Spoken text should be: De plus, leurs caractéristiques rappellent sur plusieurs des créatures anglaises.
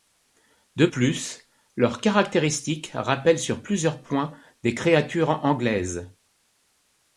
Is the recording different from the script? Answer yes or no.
yes